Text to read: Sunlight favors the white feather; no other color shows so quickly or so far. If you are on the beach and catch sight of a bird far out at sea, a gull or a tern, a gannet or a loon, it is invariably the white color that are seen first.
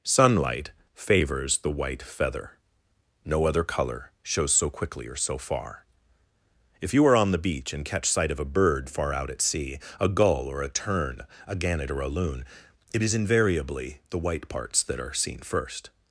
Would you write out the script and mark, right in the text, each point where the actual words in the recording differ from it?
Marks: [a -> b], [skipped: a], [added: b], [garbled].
Sunlight favors the white feather; no other color shows so quickly or so far. If you are on the beach and catch sight of a bird far out at sea, a gull or a tern, a gannet or a loon, it is invariably the white [color -> parts] that are seen first.